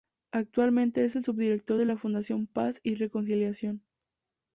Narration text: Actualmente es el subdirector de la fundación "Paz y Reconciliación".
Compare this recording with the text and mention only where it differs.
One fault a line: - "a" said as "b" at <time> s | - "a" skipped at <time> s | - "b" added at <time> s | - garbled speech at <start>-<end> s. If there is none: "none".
none